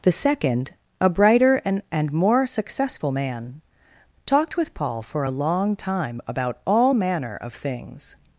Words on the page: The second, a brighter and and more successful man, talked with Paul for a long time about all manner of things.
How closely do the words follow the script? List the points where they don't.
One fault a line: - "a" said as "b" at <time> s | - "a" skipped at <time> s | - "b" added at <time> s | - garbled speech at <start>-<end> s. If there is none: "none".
none